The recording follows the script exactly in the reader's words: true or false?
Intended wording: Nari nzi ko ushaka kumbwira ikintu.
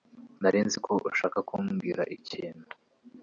true